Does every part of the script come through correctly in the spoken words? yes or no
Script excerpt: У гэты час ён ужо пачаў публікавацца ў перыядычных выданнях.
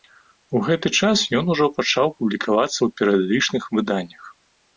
yes